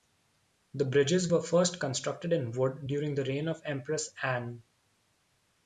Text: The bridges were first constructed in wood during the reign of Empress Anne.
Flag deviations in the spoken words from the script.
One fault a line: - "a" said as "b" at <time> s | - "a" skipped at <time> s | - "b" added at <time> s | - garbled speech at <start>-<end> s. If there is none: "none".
none